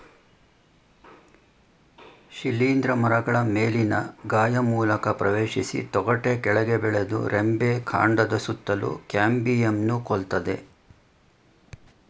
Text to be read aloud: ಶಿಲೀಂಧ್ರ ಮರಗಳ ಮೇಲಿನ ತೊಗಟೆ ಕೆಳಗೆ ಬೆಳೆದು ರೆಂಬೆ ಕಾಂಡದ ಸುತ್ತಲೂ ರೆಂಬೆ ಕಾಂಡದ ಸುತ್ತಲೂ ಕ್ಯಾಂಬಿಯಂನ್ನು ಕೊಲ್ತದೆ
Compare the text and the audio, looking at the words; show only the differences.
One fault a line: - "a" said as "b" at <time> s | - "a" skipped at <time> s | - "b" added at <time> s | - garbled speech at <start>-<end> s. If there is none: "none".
- "ಗಾಯ ಮೂಲಕ ಪ್ರವೇಶಿಸಿ" added at 4.3 s
- "ರೆಂಬೆ ಕಾಂಡದ ಸುತ್ತಲೂ" skipped at 8.9 s